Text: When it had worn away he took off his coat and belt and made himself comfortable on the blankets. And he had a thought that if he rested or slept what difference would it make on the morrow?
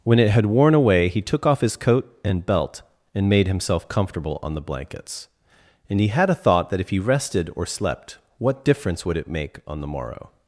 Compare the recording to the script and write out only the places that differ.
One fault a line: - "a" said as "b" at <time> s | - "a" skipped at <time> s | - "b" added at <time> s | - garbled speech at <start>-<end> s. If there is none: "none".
none